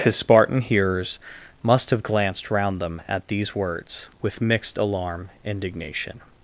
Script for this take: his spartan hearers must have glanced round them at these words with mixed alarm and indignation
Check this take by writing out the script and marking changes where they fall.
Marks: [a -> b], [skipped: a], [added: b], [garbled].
his spartan hearers must have glanced round them at these words with mixed alarm [skipped: and] indignation